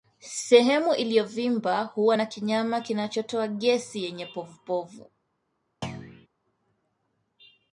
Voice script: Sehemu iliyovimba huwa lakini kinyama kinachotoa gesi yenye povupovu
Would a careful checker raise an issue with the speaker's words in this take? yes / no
yes